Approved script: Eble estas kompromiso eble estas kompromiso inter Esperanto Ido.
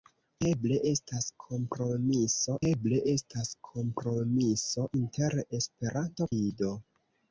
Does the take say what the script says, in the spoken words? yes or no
yes